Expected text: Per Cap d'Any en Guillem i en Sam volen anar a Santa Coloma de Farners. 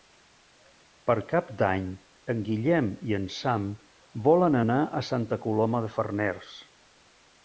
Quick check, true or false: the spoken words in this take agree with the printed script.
true